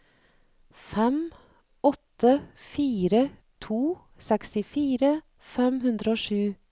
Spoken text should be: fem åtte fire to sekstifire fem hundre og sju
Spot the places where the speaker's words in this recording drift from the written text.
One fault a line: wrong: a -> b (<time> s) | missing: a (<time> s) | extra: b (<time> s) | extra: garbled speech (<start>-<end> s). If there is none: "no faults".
no faults